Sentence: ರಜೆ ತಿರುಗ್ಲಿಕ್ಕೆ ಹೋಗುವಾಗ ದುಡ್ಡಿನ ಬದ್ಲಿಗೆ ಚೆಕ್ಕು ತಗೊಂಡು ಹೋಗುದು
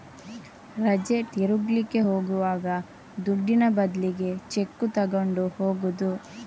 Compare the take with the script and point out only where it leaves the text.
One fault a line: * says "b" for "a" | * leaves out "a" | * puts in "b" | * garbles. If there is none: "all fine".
all fine